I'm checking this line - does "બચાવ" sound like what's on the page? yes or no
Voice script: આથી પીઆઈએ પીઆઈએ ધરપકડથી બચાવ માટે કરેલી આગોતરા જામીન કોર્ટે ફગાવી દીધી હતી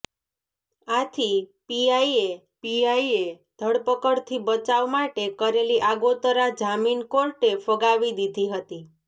yes